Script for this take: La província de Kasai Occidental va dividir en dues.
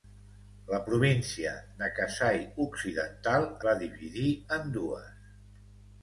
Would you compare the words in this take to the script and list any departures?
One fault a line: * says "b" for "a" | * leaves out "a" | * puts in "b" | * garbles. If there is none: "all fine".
all fine